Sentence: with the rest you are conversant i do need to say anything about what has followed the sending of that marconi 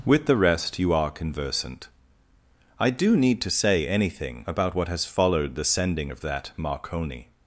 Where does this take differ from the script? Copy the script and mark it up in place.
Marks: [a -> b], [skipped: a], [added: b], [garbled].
with the rest you are conversant i do need to say anything about what has followed the sending of that marconi